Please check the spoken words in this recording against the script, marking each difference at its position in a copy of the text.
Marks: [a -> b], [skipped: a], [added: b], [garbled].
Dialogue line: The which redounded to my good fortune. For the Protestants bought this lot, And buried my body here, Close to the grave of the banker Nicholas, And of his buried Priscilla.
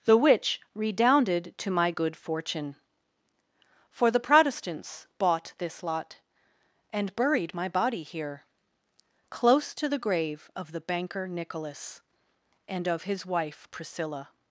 The which redounded to my good fortune. For the Protestants bought this lot, And buried my body here, Close to the grave of the banker Nicholas, And of his [buried -> wife] Priscilla.